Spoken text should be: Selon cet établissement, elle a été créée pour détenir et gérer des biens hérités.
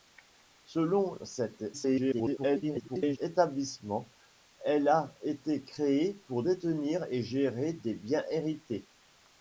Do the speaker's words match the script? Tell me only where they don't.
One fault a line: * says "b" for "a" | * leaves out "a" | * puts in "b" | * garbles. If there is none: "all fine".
* garbles